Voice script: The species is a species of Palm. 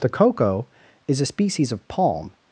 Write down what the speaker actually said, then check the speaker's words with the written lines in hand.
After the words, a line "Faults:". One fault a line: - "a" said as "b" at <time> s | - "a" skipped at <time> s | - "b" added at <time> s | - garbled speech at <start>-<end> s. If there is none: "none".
The cocoa is a species of Palm.
Faults:
- "species" said as "cocoa" at 0.1 s